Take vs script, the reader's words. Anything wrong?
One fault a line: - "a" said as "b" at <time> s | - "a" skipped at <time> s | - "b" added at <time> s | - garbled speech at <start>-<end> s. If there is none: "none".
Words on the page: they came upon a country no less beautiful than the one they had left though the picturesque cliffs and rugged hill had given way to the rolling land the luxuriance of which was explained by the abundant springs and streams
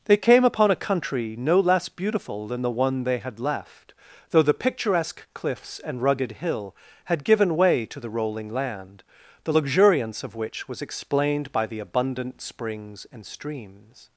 none